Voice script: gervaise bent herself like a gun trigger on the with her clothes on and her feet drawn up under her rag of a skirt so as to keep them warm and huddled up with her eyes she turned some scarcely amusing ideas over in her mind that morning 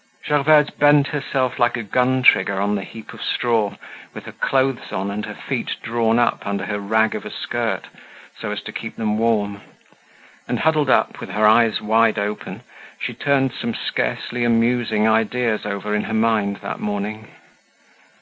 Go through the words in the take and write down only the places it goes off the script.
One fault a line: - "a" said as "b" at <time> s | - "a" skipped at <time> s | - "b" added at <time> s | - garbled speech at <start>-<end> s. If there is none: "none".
- "heap of straw" added at 2.8 s
- "wide open" added at 11.8 s